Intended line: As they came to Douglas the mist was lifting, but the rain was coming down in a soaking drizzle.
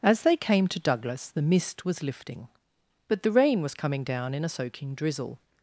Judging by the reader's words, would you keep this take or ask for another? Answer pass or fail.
pass